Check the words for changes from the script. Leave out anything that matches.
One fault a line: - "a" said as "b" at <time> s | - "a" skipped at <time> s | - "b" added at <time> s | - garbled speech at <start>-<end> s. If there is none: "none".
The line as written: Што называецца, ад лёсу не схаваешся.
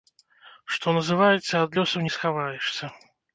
none